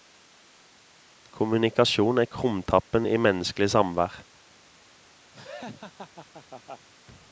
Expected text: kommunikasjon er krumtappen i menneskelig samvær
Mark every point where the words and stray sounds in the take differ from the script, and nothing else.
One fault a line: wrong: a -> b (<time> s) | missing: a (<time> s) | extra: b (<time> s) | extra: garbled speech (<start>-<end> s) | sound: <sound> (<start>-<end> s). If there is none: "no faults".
sound: laugh (5.3-6.9 s)